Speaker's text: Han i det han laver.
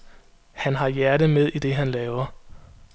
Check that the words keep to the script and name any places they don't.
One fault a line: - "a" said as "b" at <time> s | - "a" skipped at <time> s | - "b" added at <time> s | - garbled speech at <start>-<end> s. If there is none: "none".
- "har hjertet med" added at 0.8 s